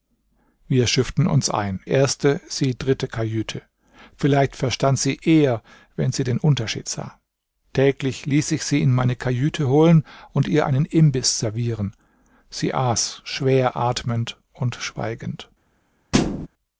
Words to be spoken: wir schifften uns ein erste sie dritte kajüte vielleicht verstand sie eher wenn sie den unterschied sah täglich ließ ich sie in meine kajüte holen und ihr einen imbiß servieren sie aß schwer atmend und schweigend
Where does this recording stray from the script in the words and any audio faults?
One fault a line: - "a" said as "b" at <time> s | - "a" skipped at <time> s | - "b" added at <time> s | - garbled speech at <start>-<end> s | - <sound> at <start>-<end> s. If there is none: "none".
- thud at 16.1-16.5 s